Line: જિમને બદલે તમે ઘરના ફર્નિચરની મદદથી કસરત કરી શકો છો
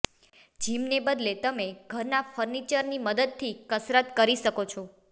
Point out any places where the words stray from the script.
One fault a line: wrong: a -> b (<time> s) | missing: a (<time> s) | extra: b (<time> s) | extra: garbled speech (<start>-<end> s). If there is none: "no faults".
no faults